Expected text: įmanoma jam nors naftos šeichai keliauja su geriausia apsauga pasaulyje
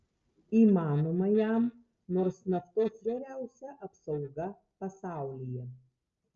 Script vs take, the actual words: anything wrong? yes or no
yes